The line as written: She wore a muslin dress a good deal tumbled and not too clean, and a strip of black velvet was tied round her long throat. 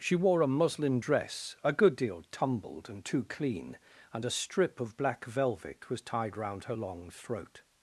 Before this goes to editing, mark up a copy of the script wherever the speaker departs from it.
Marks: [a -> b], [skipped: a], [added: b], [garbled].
She wore a muslin dress a good deal tumbled and [skipped: not] too clean, and a strip of black velvet was tied round her long throat.